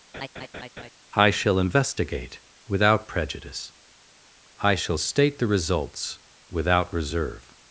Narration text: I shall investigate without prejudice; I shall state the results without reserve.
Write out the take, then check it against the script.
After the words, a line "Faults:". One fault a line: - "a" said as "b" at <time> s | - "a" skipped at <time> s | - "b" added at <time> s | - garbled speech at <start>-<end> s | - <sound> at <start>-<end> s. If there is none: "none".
I shall investigate without prejudice; I shall state the results without reserve.
Faults:
- laugh at 0.1-0.9 s